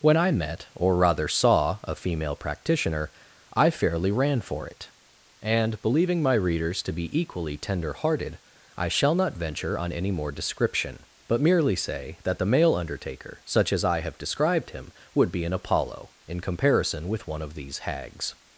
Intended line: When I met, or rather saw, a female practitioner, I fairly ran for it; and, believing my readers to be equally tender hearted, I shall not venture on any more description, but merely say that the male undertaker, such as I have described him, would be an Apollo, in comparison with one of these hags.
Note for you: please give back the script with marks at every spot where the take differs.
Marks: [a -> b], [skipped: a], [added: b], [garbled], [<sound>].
When I met, or rather saw, a female practitioner, I fairly ran for it; and, believing my readers to be equally tender hearted, I shall not venture on any more description, but merely say that the male undertaker, such as I have described him, would be an Apollo, in comparison with one of these hags.